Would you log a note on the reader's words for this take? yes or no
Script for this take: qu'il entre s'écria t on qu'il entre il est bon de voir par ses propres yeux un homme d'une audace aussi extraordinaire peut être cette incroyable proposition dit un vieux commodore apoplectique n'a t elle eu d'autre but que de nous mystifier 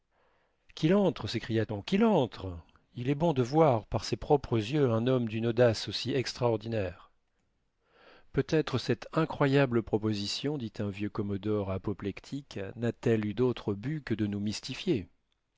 yes